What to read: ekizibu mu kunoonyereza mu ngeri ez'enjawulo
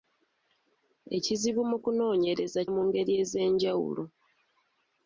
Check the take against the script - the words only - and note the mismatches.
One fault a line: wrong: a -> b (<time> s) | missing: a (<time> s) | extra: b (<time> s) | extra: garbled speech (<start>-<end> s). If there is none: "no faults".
no faults